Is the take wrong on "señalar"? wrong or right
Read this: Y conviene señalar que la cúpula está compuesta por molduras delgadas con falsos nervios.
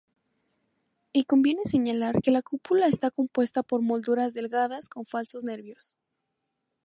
right